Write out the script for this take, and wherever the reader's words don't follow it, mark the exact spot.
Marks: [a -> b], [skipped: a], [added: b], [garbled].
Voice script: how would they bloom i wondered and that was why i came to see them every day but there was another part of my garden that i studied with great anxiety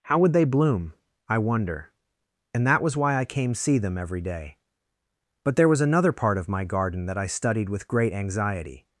how would they bloom i [wondered -> wonder] and that was why i came [skipped: to] see them every day but there was another part of my garden that i studied with great anxiety